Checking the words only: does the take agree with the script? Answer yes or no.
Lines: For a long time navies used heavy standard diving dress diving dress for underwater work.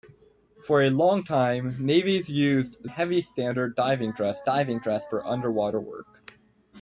yes